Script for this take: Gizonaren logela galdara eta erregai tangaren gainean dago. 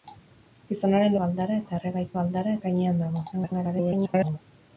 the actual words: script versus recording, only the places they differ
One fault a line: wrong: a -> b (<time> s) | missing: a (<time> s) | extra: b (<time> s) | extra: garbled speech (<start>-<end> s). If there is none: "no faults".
missing: logela (1.1 s)
wrong: tangaren -> galdara (2.2 s)
extra: garbled speech (3.3-4.4 s)